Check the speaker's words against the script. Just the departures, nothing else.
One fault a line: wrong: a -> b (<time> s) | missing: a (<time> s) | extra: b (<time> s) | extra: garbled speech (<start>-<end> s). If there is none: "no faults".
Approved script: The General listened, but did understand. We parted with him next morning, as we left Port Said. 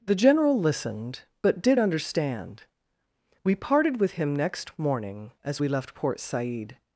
no faults